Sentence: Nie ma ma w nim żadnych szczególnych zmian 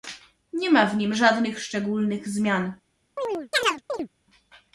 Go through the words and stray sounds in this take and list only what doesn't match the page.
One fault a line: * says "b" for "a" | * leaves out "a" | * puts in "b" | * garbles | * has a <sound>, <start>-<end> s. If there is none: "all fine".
* leaves out "ma"
* has a chirp, 3.2-4.1 s